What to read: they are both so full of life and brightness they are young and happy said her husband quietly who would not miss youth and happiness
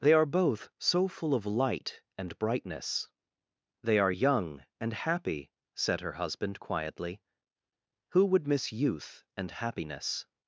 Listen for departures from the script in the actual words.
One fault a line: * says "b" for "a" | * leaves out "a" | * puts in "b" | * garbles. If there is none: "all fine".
* says "light" for "life"
* leaves out "not"